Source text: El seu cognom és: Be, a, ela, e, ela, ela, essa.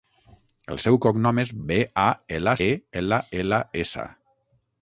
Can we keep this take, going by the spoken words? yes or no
yes